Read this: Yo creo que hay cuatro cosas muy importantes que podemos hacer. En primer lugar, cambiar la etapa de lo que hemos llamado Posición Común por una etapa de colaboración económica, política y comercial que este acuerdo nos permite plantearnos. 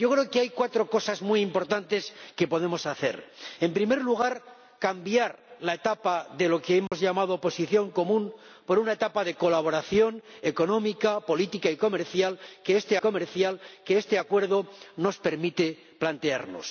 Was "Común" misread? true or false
false